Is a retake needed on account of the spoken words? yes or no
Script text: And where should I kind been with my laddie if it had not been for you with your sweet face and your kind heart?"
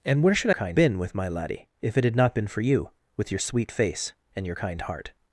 no